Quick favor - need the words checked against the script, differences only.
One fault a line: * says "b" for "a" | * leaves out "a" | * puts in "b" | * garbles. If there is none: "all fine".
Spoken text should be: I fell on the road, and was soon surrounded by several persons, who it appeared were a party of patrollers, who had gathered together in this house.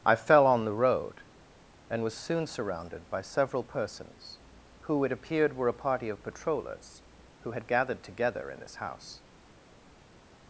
all fine